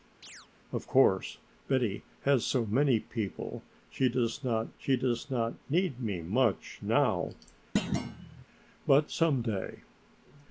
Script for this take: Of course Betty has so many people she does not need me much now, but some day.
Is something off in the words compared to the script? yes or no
yes